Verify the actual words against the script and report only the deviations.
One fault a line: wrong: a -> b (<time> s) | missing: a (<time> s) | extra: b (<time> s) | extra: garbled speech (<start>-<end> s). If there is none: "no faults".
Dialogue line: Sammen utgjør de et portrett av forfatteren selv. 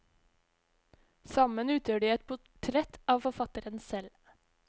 no faults